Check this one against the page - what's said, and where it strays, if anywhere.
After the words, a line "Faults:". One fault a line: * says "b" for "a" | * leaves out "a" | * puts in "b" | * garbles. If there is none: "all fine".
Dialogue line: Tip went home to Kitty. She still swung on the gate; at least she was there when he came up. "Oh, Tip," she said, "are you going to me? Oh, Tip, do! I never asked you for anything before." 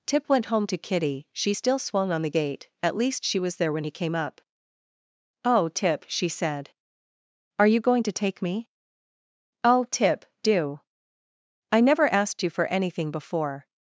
Tip went home to Kitty. She still swung on the gate; at least she was there when he came up. "Oh, Tip," she said, "are you going to take me? Oh, Tip, do! I never asked you for anything before."
Faults:
* puts in "take"